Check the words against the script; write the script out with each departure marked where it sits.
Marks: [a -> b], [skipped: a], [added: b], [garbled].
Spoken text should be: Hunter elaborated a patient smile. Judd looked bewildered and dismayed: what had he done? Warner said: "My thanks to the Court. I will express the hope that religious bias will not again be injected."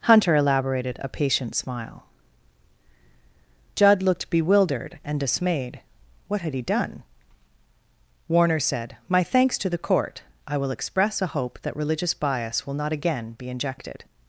Hunter elaborated a patient smile. Judd looked bewildered and dismayed: what had he done? Warner said: "My thanks to the Court. I will express [the -> a] hope that religious bias will not again be injected."